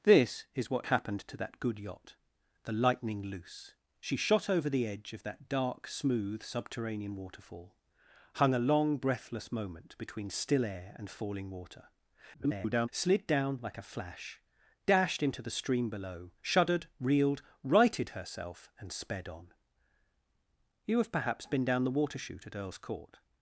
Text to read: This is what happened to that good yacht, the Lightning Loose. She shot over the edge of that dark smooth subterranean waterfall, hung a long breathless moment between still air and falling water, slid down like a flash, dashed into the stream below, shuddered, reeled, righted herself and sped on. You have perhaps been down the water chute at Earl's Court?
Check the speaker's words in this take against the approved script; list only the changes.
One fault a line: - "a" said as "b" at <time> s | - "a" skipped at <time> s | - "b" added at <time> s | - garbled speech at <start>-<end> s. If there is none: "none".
- garbled speech at 12.3-12.9 s